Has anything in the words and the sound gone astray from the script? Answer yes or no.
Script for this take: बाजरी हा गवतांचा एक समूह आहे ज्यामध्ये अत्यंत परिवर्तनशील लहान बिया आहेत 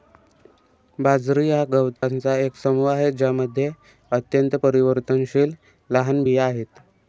yes